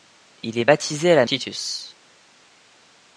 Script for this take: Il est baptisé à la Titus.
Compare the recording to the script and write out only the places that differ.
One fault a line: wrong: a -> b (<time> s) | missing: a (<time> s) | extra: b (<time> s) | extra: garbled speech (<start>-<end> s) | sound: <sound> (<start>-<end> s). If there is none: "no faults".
no faults